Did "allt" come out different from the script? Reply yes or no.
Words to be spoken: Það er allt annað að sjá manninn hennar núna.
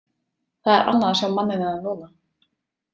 yes